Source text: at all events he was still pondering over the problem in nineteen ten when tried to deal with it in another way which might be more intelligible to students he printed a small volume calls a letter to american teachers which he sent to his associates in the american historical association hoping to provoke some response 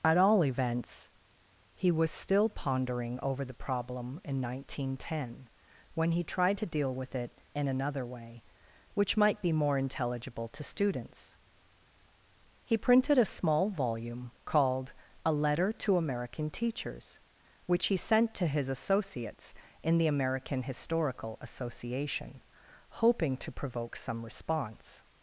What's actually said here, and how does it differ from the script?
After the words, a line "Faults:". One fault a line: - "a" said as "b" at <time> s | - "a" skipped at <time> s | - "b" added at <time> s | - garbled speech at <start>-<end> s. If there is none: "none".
at all events he was still pondering over the problem in nineteen ten when he tried to deal with it in another way which might be more intelligible to students he printed a small volume called a letter to american teachers which he sent to his associates in the american historical association hoping to provoke some response
Faults:
- "he" added at 6.1 s
- "calls" said as "called" at 14.4 s